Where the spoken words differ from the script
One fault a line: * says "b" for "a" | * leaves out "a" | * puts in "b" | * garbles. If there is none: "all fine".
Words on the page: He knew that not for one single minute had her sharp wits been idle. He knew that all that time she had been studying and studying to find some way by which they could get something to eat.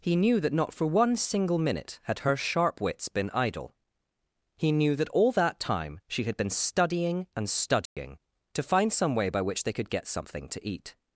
all fine